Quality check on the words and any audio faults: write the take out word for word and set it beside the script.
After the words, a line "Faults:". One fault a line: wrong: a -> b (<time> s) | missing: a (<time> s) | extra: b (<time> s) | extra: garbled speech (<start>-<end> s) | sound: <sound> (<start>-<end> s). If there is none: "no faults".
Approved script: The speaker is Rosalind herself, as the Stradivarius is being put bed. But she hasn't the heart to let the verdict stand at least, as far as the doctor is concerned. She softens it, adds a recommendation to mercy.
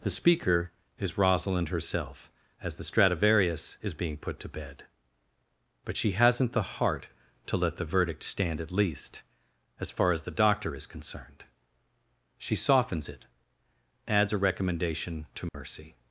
The speaker is Rosalind herself, as the Stradivarius is being put to bed. But she hasn't the heart to let the verdict stand at least, as far as the doctor is concerned. She softens it, adds a recommendation to mercy.
Faults:
extra: to (4.4 s)
sound: dropout (15.5-15.5 s)